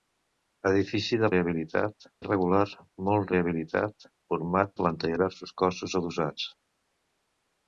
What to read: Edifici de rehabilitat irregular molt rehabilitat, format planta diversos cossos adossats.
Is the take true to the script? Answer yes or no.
yes